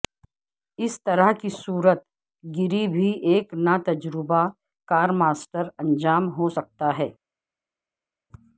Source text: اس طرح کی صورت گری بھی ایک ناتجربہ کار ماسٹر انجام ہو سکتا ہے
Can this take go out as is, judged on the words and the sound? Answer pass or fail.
pass